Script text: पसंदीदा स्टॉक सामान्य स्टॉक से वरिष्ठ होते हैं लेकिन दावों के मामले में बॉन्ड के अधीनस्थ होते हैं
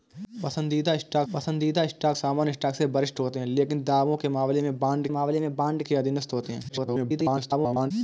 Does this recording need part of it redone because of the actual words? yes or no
yes